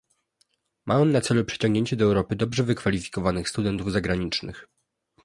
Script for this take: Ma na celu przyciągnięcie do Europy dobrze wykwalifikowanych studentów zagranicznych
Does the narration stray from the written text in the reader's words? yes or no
yes